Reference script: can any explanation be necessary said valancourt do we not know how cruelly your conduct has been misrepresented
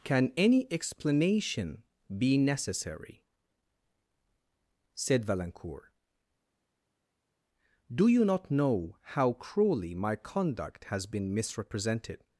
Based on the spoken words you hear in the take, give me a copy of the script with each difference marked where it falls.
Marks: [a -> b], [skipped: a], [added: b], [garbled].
can any explanation be necessary said valancourt do [we -> you] not know how cruelly [your -> my] conduct has been misrepresented